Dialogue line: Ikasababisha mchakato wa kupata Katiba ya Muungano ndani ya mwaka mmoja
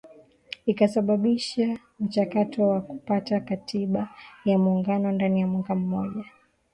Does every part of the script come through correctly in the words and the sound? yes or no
yes